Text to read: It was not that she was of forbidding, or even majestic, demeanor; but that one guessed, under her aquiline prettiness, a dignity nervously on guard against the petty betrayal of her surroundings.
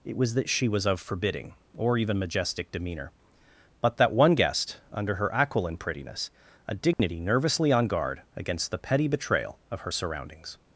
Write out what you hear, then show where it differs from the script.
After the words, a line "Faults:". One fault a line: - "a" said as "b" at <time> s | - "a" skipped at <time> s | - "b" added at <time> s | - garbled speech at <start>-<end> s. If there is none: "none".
It was that she was of forbidding, or even majestic, demeanor; but that one guessed, under her aquiline prettiness, a dignity nervously on guard against the petty betrayal of her surroundings.
Faults:
- "not" skipped at 0.3 s